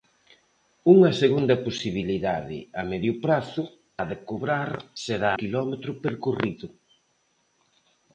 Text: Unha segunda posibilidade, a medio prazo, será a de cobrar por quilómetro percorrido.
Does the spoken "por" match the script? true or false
false